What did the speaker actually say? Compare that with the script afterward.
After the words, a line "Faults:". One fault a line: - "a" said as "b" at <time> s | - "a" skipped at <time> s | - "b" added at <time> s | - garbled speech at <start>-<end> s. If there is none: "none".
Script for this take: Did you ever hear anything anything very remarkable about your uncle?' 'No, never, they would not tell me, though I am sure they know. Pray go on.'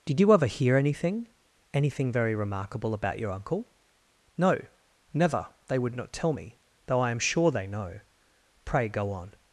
Did you ever hear anything anything very remarkable about your uncle?' 'No, never, they would not tell me, though I am sure they know. Pray go on.'
Faults:
none